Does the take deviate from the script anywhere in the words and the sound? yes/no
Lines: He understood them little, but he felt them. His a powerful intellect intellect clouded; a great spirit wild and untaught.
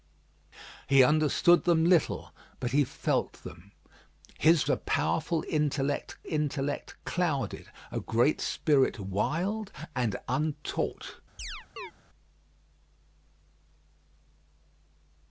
yes